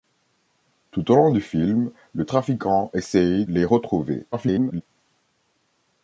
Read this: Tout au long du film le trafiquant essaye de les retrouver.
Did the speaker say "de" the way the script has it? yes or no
no